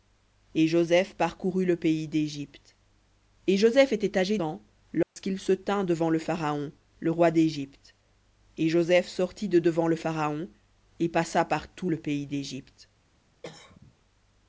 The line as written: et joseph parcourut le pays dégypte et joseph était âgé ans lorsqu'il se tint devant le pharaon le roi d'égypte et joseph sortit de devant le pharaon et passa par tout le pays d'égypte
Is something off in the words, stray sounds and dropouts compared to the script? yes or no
yes